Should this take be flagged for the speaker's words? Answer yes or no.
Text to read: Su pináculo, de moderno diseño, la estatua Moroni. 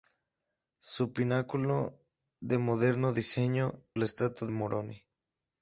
no